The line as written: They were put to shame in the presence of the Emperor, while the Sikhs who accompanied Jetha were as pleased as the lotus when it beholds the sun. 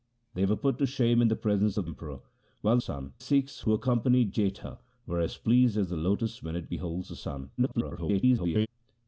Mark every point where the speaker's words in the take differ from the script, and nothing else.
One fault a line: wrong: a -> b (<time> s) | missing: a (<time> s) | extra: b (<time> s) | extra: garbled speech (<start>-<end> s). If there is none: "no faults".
missing: the (1.9 s)
wrong: the -> sun (2.8 s)
extra: garbled speech (7.6-8.7 s)